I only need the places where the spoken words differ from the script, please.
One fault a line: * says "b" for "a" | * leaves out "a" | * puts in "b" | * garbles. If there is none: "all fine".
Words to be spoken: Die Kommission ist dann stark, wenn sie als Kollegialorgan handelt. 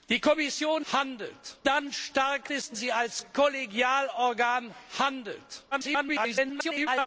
* says "handelt" for "ist"
* says "ist" for "wenn"
* garbles